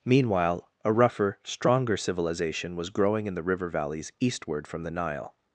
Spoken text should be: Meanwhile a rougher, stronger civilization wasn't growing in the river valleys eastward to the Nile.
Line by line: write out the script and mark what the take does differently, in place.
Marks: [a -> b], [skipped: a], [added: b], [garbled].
Meanwhile a rougher, stronger civilization [wasn't -> was] growing in the river valleys eastward [to -> from] the Nile.